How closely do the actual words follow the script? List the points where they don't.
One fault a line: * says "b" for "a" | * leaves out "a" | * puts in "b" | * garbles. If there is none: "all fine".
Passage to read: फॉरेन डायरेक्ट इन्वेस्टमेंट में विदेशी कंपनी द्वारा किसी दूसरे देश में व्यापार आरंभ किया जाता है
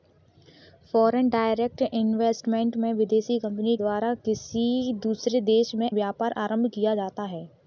all fine